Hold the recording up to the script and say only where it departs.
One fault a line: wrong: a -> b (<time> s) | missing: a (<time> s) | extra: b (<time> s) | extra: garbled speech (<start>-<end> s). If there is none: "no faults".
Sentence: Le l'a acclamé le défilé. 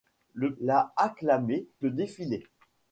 no faults